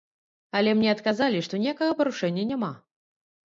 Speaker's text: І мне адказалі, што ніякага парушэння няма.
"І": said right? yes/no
no